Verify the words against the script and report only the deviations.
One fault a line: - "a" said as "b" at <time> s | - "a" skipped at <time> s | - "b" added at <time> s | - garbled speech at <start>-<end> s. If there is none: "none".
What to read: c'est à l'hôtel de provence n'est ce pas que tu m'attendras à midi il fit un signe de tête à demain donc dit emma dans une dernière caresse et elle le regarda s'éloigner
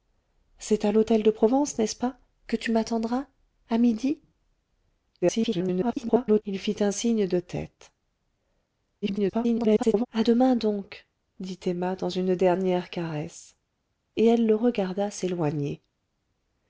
- garbled speech at 5.2-6.4 s
- garbled speech at 9.0-10.1 s